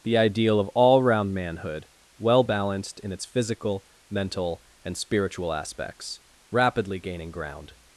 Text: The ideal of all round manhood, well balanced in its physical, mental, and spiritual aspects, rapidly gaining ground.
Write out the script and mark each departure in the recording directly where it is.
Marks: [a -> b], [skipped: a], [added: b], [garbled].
The ideal of all round manhood, well balanced in its physical, mental, and spiritual aspects, rapidly gaining ground.